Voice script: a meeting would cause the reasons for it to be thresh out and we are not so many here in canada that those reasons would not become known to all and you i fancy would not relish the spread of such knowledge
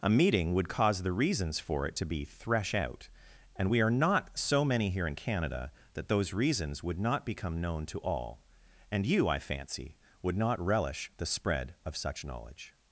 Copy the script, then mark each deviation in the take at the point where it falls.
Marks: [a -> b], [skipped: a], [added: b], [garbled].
a meeting would cause the reasons for it to be thresh out and we are not so many here in canada that those reasons would not become known to all and you i fancy would not relish the spread of such knowledge